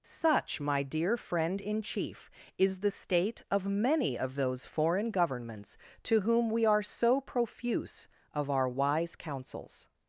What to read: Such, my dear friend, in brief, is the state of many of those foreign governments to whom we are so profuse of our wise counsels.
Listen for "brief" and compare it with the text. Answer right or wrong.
wrong